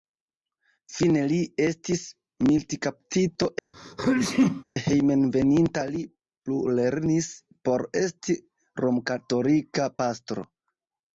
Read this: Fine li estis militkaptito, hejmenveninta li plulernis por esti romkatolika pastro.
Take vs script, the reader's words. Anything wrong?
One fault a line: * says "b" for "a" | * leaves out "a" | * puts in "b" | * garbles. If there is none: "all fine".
all fine